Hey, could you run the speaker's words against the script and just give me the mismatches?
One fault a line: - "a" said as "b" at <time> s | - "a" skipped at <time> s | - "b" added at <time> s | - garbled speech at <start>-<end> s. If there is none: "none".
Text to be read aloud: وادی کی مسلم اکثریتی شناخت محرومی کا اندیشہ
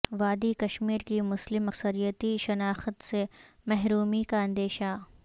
- "کشمیر" added at 0.6 s
- "سے" added at 3.0 s